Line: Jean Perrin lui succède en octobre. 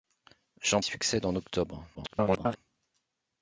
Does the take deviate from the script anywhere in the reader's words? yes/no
yes